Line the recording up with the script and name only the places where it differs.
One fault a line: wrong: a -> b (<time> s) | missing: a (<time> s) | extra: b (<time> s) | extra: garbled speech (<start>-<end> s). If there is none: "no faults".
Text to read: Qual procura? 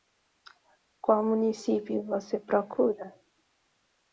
extra: município você (1.2 s)